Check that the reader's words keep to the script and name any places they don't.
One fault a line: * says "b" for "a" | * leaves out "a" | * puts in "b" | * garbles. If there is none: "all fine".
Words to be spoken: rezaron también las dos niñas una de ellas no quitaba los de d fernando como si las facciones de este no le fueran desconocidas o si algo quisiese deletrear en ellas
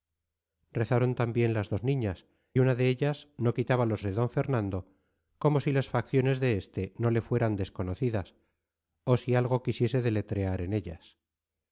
all fine